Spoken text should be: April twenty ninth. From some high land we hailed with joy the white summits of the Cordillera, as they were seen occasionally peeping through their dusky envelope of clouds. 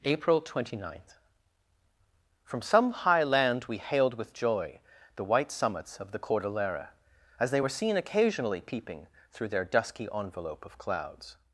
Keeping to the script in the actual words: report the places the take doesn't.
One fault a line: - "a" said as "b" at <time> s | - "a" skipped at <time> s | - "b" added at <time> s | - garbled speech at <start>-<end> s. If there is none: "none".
none